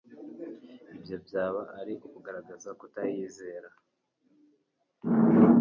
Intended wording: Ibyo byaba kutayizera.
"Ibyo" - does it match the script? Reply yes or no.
yes